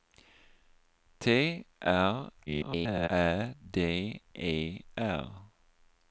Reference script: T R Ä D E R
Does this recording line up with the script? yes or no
no